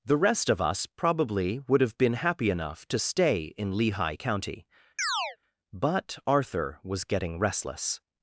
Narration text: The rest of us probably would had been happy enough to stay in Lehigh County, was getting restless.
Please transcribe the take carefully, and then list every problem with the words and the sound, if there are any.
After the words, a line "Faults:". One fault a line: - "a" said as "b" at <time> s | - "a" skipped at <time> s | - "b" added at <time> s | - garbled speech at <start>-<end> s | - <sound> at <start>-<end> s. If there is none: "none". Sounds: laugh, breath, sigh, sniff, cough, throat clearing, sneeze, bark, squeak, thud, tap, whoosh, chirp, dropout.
The rest of us probably would have been happy enough to stay in Lehigh County, but Arthur was getting restless.
Faults:
- "had" said as "have" at 1.8 s
- chirp at 5.0-5.4 s
- "but Arthur" added at 5.7 s